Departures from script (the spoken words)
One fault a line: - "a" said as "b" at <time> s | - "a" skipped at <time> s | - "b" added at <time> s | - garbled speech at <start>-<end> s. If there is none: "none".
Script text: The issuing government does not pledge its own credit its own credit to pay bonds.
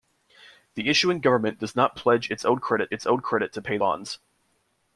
none